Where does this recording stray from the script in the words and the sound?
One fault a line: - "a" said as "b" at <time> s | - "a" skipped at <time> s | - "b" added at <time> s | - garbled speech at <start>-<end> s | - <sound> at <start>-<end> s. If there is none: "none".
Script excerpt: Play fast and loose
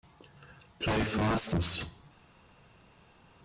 - "and" skipped at 1.5 s